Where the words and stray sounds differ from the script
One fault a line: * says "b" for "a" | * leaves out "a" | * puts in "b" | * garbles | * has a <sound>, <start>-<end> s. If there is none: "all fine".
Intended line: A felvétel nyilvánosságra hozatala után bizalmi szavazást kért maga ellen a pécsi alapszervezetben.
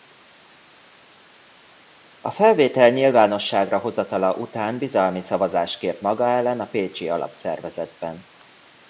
all fine